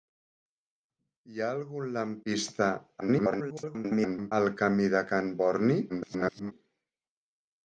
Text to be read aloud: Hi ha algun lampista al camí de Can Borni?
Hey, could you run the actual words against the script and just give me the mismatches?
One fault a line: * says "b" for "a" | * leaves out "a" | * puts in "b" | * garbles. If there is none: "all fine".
* garbles
* garbles